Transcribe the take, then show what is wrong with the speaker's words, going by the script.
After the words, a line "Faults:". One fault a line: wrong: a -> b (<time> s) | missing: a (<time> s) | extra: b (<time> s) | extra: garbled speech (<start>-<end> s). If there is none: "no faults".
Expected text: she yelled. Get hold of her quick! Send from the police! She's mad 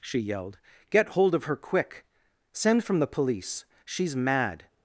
she yelled. Get hold of her quick! Send from the police! She's mad
Faults:
no faults